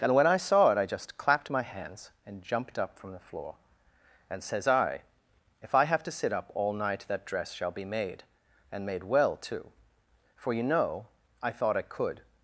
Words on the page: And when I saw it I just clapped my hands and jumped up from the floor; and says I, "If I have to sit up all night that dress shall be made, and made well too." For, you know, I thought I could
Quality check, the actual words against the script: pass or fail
pass